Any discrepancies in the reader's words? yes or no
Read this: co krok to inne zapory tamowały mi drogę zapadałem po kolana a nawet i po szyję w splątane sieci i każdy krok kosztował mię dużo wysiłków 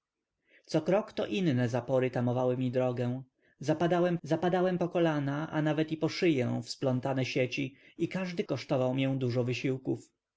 yes